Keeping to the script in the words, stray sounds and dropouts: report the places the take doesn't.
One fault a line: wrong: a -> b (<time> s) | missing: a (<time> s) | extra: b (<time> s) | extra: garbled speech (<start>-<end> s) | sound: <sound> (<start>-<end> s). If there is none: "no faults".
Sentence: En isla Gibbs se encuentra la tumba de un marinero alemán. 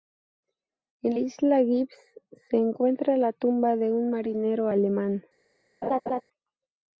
sound: laugh (5.8-6.2 s)